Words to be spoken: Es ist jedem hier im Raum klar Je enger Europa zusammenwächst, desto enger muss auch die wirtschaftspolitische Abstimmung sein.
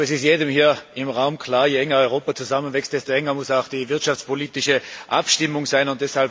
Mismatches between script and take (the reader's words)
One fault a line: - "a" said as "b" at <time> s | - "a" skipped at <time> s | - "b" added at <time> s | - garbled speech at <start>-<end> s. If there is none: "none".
none